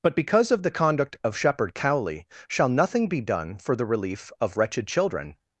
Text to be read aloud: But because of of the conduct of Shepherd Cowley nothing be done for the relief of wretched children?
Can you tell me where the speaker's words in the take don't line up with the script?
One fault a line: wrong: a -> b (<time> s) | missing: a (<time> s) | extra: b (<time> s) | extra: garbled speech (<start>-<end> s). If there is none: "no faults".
missing: of (0.6 s)
extra: shall (2.5 s)